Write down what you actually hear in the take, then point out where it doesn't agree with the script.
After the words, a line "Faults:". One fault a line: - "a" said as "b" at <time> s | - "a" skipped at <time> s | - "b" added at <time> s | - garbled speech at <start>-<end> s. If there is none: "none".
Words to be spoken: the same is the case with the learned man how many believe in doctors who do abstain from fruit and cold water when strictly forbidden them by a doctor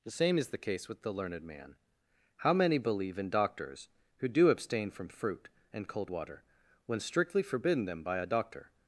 the same is the case with the learned man how many believe in doctors who do abstain from fruit and cold water when strictly forbidden them by a doctor
Faults:
none